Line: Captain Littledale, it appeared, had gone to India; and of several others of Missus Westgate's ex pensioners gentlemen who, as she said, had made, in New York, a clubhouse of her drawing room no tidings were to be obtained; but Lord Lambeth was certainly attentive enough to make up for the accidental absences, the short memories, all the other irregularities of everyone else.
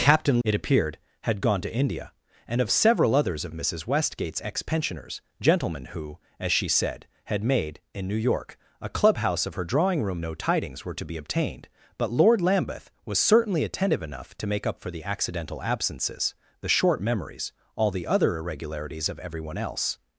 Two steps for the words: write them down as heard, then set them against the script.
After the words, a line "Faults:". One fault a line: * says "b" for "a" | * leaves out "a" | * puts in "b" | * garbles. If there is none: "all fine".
Captain It appeared, had gone to India; and of several others of Missus Westgate's ex pensioners gentlemen who, as she said, had made, in New York, a clubhouse of her drawing room no tidings were to be obtained; but Lord Lambeth was certainly attentive enough to make up for the accidental absences, the short memories, all the other irregularities of everyone else.
Faults:
* leaves out "Littledale"